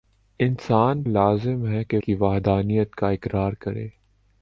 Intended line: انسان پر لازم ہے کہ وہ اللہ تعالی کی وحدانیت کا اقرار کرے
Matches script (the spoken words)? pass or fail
fail